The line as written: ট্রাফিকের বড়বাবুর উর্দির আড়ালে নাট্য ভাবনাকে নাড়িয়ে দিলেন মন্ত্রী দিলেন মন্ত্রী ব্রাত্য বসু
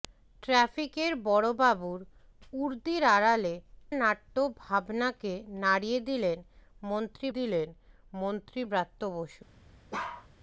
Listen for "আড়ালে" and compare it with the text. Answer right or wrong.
right